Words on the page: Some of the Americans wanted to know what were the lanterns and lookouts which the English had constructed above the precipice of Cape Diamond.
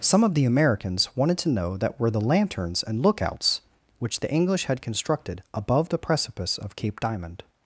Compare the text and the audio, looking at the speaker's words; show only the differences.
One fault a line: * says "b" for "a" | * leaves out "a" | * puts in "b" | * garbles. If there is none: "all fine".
* says "that" for "what"